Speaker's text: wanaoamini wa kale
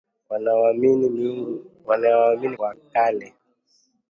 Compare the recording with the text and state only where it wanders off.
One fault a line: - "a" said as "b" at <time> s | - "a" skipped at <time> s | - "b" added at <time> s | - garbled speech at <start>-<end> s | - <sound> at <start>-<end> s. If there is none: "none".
none